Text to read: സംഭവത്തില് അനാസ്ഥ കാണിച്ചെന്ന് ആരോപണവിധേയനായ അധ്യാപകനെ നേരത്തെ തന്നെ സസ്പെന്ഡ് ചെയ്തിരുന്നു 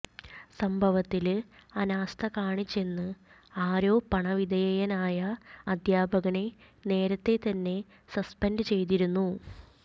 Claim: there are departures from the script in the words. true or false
false